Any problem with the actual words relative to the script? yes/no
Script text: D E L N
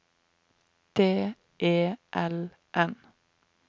no